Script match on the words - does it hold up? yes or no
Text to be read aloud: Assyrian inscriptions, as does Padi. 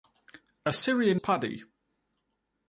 no